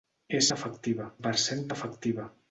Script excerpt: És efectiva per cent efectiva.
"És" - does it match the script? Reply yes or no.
yes